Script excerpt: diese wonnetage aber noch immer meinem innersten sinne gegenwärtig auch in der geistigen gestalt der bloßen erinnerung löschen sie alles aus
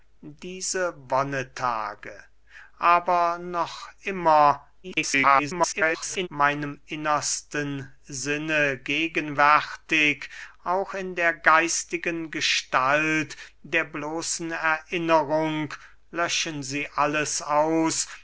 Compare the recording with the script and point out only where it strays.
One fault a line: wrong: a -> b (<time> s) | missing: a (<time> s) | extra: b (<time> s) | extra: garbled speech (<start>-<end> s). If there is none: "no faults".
extra: garbled speech (4.8-6.3 s)